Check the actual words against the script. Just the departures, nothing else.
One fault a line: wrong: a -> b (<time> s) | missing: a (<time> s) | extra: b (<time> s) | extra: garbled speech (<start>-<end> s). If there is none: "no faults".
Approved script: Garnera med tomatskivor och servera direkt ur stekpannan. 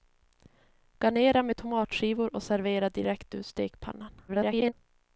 extra: garbled speech (4.3-4.7 s)